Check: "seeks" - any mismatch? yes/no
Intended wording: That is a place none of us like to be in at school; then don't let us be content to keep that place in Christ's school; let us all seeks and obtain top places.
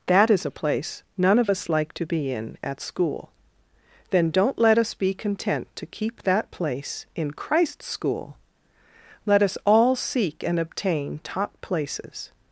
yes